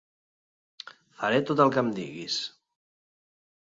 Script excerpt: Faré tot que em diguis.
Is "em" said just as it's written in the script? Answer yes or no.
yes